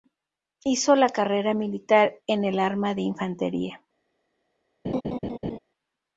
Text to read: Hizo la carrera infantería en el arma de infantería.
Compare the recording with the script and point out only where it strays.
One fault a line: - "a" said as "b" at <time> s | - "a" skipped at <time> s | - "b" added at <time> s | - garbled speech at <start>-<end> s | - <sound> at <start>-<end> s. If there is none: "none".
- "infantería" said as "militar" at 1.5 s
- laugh at 4.8-5.6 s